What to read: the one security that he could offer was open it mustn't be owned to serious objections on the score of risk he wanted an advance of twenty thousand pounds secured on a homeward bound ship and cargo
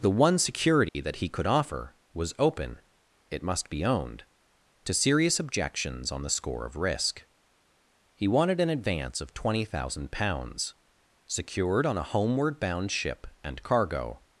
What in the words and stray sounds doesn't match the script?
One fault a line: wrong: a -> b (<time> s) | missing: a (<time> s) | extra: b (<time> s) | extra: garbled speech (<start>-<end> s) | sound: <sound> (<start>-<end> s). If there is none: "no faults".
sound: dropout (0.9-1.0 s)
wrong: mustn't -> must (3.4 s)